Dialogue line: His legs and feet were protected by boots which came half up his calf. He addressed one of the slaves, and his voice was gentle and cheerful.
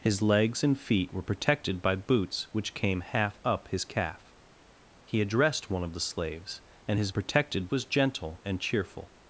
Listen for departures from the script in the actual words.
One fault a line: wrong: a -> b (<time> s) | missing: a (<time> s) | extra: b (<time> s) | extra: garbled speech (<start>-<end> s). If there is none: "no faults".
wrong: voice -> protected (7.1 s)